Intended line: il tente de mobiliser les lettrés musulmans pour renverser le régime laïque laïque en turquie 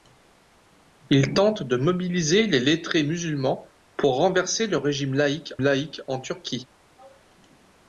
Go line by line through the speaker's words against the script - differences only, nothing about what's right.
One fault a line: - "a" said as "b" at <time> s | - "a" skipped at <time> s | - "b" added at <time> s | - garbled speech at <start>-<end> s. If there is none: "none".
none